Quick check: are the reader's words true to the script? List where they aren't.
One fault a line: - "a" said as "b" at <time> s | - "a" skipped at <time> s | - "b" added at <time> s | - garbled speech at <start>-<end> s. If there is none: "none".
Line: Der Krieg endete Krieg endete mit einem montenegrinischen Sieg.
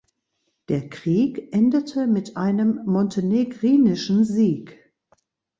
- "Krieg endete" skipped at 2.1 s